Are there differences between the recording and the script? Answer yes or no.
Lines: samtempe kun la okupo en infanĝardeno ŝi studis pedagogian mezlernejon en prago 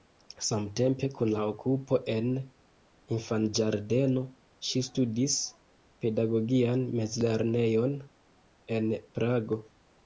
no